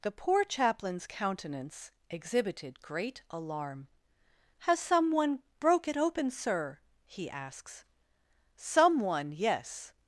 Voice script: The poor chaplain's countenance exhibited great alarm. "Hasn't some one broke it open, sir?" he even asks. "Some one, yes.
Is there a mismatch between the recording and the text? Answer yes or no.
yes